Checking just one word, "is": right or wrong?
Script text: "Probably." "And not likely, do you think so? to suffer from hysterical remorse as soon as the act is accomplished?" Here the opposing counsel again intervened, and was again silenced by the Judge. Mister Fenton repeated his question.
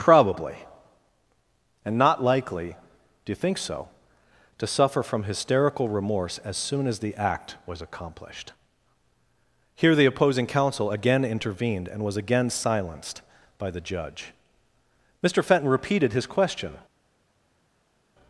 wrong